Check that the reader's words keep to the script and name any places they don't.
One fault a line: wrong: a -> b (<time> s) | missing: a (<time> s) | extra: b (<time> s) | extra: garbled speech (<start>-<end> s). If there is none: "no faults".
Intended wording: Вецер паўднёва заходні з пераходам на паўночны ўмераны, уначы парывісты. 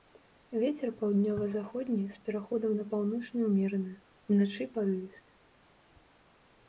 no faults